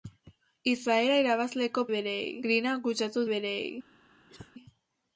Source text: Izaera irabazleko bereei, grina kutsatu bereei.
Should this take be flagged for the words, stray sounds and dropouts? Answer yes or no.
yes